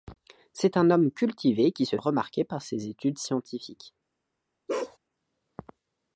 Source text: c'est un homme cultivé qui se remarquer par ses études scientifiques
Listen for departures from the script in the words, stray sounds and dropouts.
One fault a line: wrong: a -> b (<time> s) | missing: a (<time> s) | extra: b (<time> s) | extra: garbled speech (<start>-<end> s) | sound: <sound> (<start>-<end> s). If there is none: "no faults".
sound: bark (4.7-5.0 s)